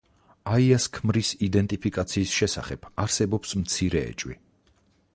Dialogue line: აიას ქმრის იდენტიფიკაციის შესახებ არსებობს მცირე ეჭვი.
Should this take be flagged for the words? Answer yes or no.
no